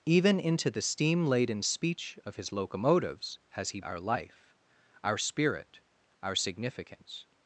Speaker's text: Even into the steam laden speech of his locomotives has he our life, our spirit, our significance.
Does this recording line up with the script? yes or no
yes